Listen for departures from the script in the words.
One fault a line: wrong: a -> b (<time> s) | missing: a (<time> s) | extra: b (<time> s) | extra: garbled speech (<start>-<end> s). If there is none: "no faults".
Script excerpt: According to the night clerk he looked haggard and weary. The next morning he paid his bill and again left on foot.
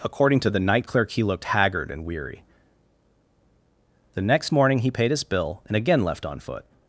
no faults